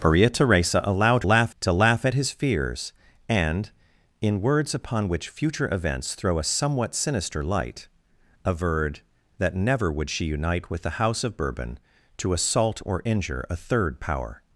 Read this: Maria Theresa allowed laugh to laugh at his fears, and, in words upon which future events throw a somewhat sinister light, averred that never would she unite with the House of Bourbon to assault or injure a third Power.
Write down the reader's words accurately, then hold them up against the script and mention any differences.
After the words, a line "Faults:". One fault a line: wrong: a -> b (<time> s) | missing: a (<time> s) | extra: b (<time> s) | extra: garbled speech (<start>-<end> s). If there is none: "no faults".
Maria Theresa allowed laugh to laugh at his fears, and, in words upon which future events throw a somewhat sinister light, averred that never would she unite with the House of Bourbon to assault or injure a third Power.
Faults:
no faults